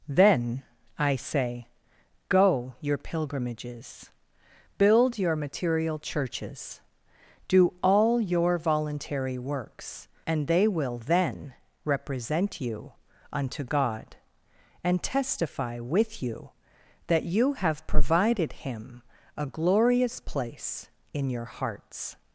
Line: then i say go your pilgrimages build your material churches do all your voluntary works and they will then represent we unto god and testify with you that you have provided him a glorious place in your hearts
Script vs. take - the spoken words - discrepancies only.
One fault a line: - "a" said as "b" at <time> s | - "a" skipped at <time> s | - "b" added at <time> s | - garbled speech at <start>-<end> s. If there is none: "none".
- "we" said as "you" at 12.6 s